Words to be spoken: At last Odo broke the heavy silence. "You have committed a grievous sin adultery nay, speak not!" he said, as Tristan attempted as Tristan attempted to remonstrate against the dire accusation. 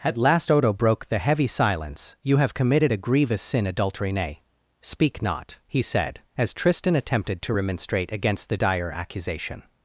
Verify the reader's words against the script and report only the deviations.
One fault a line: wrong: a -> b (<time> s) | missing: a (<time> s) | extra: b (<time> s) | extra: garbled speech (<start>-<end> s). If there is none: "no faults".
missing: as Tristan attempted (7.4 s)